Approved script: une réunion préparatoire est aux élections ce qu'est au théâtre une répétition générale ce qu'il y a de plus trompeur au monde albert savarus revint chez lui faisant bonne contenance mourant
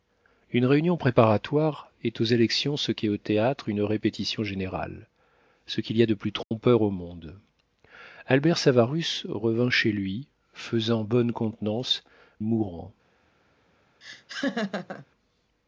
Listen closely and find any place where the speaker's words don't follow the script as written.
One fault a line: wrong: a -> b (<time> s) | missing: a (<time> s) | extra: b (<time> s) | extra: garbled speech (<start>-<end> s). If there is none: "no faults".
no faults